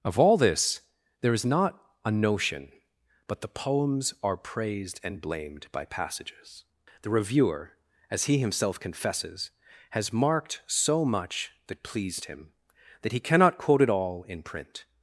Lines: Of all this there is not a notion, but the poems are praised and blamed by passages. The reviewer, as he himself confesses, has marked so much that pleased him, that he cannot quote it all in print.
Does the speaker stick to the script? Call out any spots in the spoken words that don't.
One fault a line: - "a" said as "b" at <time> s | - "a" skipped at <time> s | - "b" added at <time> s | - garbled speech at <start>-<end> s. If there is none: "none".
none